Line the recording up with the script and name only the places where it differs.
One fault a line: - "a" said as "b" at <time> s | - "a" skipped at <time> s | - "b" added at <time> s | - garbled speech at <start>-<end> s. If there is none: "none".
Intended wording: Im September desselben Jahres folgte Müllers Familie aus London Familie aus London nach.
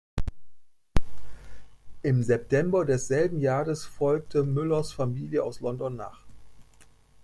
- "Familie aus London" skipped at 6.0 s